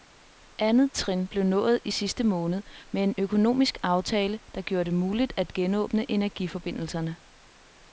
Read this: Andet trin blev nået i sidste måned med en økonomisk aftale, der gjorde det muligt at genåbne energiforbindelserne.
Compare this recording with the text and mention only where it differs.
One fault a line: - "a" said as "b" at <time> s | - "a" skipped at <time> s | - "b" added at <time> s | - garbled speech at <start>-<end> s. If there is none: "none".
none